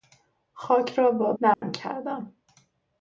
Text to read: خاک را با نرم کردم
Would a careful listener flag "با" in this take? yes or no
no